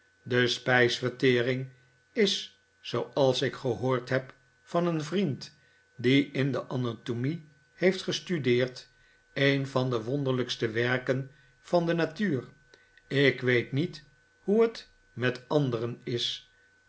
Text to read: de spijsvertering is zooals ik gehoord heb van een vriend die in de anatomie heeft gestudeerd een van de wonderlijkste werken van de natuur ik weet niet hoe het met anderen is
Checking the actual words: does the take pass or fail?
pass